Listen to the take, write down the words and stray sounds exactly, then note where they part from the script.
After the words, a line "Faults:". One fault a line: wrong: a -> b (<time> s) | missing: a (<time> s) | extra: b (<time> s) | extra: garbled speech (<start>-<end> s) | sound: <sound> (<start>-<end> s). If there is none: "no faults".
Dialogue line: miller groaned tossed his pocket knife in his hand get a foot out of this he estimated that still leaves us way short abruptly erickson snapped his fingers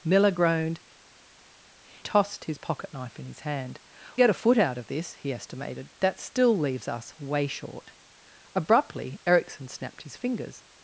miller groaned tossed his pocket knife in his hand get a foot out of this he estimated that still leaves us way short abruptly erickson snapped his fingers
Faults:
no faults